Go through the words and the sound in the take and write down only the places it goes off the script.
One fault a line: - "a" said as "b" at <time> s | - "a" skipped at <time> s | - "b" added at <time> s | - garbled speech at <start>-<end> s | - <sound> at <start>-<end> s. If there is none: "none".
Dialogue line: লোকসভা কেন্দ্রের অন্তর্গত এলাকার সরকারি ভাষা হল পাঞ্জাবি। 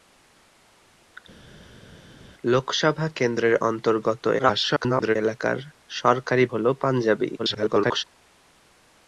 - garbled speech at 4.4-5.2 s
- "ভাষা" skipped at 6.4 s
- garbled speech at 7.4-8.0 s